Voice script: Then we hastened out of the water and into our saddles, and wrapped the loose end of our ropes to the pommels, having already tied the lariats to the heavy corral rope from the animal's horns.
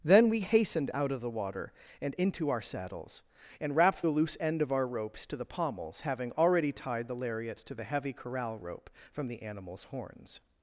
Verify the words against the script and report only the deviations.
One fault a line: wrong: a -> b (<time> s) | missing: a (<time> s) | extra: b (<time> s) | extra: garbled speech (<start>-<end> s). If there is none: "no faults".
no faults